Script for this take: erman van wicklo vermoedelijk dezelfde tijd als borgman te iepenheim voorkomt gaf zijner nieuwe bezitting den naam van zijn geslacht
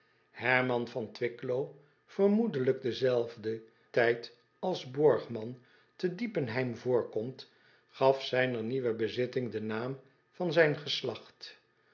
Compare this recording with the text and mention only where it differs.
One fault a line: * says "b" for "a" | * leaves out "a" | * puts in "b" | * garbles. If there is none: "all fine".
all fine